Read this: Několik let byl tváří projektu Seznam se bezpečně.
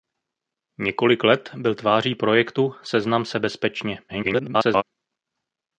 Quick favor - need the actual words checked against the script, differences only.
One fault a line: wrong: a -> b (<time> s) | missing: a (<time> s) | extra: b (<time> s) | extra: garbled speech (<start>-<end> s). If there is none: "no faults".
extra: garbled speech (4.1-4.8 s)